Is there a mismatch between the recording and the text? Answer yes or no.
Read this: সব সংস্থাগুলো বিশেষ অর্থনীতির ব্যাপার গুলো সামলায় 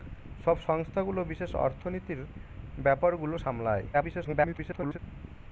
yes